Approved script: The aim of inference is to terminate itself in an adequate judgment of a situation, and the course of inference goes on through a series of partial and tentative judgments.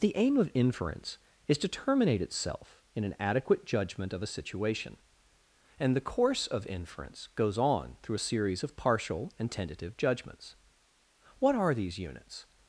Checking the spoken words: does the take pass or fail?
fail